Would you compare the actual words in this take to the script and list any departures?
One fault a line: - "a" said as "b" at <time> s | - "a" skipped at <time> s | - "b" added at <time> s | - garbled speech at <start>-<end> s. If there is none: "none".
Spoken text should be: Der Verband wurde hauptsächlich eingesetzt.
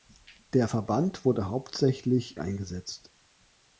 none